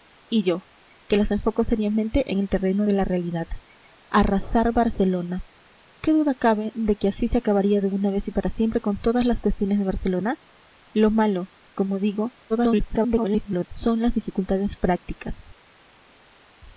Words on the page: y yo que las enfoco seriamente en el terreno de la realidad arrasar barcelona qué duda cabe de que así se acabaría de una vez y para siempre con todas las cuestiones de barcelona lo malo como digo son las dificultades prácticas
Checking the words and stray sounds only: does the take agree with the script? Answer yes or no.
no